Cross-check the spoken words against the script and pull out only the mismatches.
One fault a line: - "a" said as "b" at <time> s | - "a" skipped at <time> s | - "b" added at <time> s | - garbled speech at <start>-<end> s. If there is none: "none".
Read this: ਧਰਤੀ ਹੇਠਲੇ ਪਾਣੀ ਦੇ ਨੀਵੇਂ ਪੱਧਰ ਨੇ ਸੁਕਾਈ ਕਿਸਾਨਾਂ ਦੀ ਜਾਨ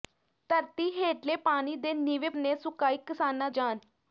- "ਪੱਧਰ" skipped at 2.3 s
- "ਦੀ" skipped at 3.5 s